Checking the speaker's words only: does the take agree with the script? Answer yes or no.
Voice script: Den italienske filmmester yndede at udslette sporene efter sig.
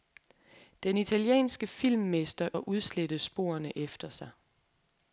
no